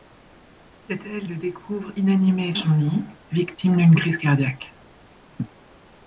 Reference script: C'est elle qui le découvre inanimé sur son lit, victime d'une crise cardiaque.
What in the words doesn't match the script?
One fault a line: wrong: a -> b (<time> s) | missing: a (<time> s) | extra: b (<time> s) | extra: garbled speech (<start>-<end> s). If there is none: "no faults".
missing: qui (1.3 s)
missing: sur (2.5 s)